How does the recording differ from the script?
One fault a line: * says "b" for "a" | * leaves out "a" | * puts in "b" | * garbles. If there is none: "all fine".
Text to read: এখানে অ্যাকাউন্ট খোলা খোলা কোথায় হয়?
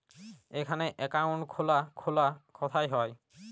all fine